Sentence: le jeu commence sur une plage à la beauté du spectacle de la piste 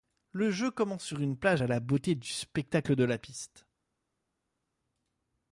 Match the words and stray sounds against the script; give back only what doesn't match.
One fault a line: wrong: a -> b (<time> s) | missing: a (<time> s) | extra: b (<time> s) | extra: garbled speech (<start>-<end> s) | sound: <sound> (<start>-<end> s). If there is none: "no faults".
no faults